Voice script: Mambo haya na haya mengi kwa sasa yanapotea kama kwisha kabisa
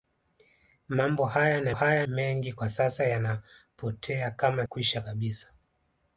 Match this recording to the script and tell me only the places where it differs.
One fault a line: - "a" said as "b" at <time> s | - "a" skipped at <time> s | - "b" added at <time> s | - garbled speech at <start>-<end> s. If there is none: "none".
none